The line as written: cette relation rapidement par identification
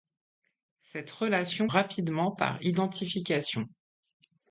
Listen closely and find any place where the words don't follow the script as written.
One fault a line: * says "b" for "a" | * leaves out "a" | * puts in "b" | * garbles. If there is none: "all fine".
all fine